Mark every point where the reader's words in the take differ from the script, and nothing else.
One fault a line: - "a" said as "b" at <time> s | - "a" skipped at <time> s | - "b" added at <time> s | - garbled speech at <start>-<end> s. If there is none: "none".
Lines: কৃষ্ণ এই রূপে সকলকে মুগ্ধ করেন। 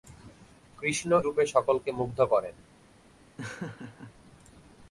- "এই" skipped at 1.1 s